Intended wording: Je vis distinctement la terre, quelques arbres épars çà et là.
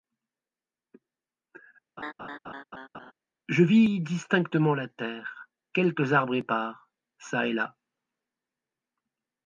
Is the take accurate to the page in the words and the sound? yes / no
no